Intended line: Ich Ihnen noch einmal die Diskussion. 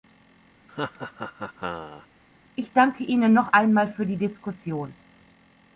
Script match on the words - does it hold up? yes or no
no